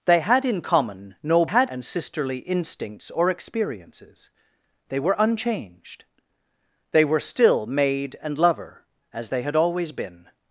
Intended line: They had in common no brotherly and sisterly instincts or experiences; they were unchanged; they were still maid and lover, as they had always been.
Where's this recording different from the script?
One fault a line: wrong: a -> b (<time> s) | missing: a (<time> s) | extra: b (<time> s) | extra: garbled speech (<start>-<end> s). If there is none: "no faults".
wrong: brotherly -> had (1.4 s)